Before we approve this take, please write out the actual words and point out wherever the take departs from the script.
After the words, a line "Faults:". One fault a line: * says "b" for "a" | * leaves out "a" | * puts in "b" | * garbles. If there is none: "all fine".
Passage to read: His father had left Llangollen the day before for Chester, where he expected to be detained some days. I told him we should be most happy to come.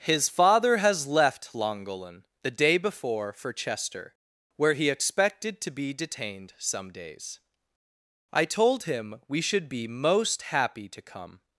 His father has left Llangollen the day before for Chester, where he expected to be detained some days. I told him we should be most happy to come.
Faults:
* says "has" for "had"